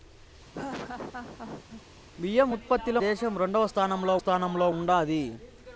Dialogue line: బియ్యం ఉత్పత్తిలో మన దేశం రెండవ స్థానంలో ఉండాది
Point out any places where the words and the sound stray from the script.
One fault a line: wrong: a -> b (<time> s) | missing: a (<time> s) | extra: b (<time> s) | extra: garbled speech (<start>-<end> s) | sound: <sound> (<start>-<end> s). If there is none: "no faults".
sound: laugh (0.5-1.8 s)
missing: మన (3.0 s)
extra: స్థానంలో (4.2 s)